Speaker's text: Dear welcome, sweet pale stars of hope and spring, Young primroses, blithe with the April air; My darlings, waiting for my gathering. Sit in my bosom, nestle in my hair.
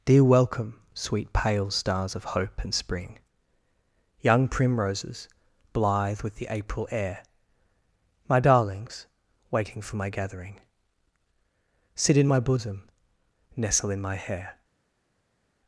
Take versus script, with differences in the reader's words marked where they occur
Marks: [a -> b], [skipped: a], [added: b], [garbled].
Dear welcome, sweet pale stars of hope and spring, Young primroses, blithe with the April air; My darlings, waiting for my gathering. Sit in my bosom, nestle in my hair.